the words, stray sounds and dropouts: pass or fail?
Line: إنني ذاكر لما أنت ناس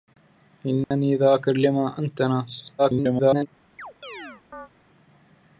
fail